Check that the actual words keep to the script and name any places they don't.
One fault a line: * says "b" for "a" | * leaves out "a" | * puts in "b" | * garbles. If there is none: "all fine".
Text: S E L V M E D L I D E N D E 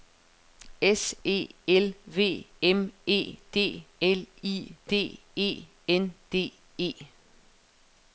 all fine